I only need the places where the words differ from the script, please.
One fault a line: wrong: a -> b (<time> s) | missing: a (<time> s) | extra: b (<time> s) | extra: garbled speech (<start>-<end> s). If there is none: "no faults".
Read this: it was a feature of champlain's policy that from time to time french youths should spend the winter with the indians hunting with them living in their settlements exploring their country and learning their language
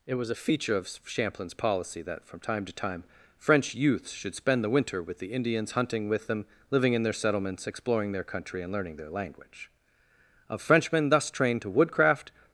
extra: of frenchmen thus trained to woodcraft (10.5 s)